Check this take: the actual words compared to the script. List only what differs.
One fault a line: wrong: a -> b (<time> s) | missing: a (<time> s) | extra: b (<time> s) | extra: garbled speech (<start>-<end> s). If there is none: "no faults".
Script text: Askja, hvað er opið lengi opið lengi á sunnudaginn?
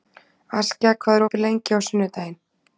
missing: opið lengi (1.8 s)